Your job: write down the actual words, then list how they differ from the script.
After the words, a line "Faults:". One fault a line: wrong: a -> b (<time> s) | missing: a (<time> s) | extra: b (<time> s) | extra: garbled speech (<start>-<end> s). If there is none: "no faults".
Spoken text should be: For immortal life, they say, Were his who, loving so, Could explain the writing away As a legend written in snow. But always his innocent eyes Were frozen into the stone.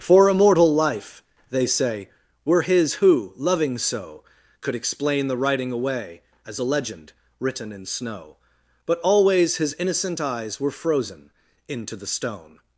For immortal life, they say, Were his who, loving so, Could explain the writing away As a legend written in snow. But always his innocent eyes Were frozen into the stone.
Faults:
no faults